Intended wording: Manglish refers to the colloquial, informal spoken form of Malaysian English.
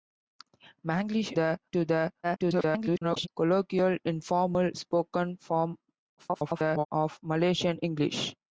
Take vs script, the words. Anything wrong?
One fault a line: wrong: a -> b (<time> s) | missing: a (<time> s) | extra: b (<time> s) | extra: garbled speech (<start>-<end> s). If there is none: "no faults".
wrong: refers -> the (1.3 s)
extra: garbled speech (2.2-3.3 s)
extra: garbled speech (6.2-6.9 s)